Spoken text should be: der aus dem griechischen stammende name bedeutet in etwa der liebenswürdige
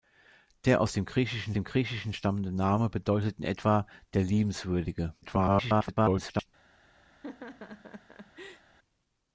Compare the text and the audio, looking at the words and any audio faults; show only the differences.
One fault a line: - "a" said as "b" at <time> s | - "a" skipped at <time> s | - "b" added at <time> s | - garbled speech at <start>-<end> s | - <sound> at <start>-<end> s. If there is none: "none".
- "dem griechischen" added at 1.5 s
- garbled speech at 5.2-6.5 s
- laugh at 7.1-8.7 s